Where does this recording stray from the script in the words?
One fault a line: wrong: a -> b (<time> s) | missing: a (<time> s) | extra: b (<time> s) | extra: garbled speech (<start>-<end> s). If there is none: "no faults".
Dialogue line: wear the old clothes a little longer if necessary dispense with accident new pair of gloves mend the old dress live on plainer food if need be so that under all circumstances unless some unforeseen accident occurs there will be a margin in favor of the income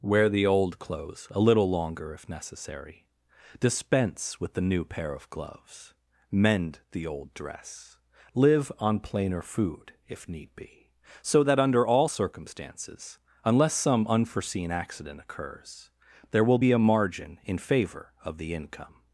wrong: accident -> the (4.5 s)